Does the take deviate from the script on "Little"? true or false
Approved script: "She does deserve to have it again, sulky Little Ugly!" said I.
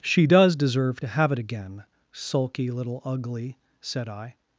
false